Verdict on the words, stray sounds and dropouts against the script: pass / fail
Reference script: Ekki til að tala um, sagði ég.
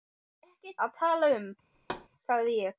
fail